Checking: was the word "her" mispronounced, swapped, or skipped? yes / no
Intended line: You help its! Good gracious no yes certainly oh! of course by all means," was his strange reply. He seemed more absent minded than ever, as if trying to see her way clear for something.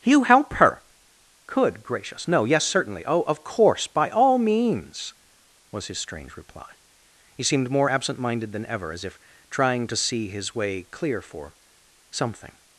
yes